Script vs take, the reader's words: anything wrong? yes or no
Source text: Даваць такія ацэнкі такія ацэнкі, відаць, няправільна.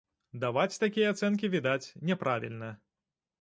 yes